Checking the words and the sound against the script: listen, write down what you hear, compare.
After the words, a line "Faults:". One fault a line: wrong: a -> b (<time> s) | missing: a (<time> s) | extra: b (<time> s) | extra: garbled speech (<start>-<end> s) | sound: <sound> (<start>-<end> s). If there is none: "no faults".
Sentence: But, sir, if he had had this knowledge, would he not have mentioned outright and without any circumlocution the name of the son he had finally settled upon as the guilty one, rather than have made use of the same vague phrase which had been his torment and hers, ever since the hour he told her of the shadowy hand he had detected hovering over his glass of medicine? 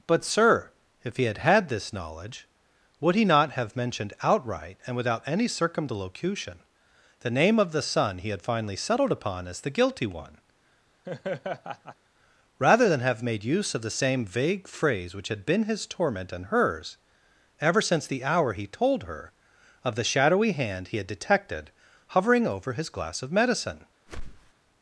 But, sir, if he had had this knowledge, would he not have mentioned outright and without any circumlocution the name of the son he had finally settled upon as the guilty one, rather than have made use of the same vague phrase which had been his torment and hers, ever since the hour he told her of the shadowy hand he had detected hovering over his glass of medicine?
Faults:
sound: laugh (11.0-12.0 s)
sound: whoosh (24.1-24.5 s)